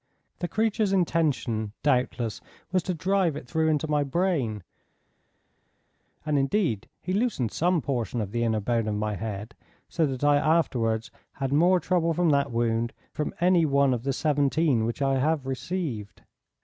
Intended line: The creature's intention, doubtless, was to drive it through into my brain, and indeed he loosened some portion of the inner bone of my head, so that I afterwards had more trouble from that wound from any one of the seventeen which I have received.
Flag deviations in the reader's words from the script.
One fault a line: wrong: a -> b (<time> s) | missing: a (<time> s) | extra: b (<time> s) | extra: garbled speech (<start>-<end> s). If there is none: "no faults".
no faults